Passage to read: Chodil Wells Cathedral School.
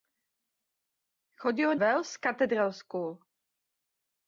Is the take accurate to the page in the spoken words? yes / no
yes